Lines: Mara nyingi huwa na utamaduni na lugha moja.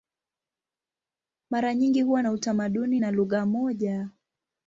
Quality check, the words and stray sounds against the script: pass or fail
pass